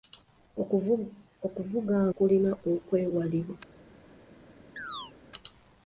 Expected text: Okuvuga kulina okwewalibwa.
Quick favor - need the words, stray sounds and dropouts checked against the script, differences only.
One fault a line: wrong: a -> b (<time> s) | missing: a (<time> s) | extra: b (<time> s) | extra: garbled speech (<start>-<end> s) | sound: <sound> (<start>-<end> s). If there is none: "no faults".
sound: chirp (4.8-5.1 s)